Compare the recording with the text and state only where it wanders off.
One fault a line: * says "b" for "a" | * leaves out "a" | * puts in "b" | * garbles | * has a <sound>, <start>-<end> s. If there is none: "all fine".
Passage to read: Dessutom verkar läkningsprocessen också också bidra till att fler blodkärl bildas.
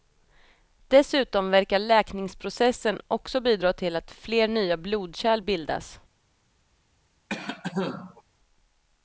* leaves out "också"
* puts in "nya"
* has a cough, 7.3-8.2 s